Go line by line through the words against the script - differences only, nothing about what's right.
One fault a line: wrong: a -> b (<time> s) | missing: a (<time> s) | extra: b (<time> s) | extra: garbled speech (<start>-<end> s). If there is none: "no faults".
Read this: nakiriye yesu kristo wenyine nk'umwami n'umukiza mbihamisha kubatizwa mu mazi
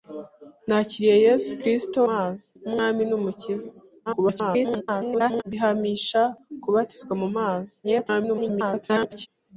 wrong: wenyine -> mazi (2.1 s)
extra: garbled speech (4.1-5.4 s)
extra: garbled speech (7.8-9.3 s)